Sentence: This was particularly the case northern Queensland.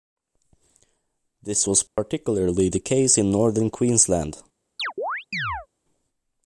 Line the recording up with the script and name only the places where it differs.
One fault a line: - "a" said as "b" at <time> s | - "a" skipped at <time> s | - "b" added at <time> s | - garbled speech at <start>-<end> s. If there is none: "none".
- "in" added at 3.2 s